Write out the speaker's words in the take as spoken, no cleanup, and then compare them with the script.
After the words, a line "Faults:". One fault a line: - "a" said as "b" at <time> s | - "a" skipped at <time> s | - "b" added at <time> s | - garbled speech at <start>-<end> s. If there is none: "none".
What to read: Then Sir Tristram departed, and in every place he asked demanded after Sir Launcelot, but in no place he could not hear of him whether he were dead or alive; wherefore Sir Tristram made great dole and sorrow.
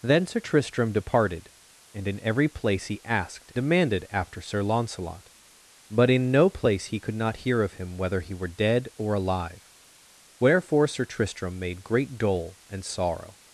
Then Sir Tristram departed, and in every place he asked demanded after Sir Launcelot, but in no place he could not hear of him whether he were dead or alive; wherefore Sir Tristram made great dole and sorrow.
Faults:
none